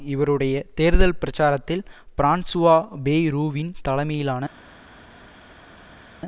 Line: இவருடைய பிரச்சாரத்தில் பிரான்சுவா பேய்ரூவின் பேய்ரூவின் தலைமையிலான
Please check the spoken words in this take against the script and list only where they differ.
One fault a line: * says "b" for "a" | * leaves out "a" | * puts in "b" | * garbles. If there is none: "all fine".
* puts in "தேர்தல்"
* leaves out "பேய்ரூவின்"